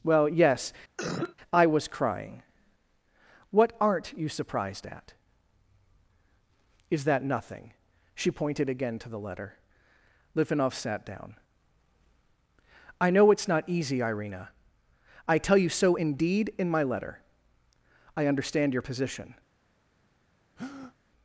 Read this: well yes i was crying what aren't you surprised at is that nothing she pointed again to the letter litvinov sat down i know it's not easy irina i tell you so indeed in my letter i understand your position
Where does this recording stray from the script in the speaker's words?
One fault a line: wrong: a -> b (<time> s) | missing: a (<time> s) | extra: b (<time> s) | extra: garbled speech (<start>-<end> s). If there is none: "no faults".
no faults